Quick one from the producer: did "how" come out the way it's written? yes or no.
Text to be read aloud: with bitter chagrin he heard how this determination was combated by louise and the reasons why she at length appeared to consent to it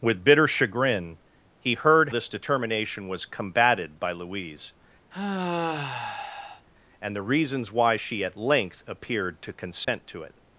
no